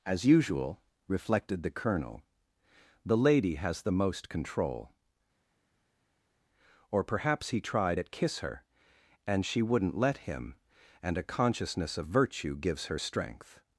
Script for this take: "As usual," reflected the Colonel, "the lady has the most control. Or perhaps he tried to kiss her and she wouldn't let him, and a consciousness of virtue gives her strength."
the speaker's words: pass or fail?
fail